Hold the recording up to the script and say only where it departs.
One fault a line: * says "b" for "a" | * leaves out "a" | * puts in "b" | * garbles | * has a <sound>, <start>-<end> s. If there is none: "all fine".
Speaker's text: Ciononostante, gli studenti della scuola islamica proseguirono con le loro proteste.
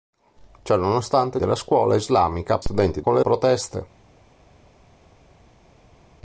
* leaves out "gli studenti"
* says "studenti" for "proseguirono"
* leaves out "loro"